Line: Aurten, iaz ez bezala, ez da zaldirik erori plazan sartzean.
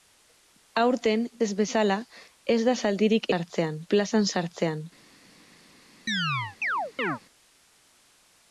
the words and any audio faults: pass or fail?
fail